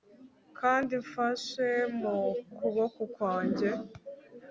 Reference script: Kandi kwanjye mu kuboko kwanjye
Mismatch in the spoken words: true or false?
true